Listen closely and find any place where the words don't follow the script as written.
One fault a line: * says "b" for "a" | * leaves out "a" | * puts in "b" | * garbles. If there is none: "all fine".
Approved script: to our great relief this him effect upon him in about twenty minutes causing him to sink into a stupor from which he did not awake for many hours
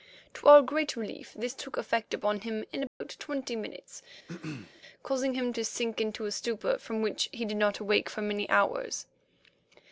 * says "took" for "him"